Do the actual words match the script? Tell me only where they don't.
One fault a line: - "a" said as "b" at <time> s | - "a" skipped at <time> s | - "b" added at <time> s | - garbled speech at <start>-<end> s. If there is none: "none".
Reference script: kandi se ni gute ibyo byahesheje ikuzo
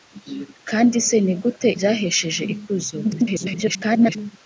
- "ibyo" skipped at 1.7 s
- garbled speech at 3.0-4.2 s